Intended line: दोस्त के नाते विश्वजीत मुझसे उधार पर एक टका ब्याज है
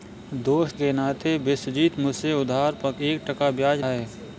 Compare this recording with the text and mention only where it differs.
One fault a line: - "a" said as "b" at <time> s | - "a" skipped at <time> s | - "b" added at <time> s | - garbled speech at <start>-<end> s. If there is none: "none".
none